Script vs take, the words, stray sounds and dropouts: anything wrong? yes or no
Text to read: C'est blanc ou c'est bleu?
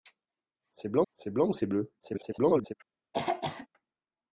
yes